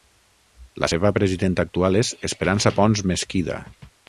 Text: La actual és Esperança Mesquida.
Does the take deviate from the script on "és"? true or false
false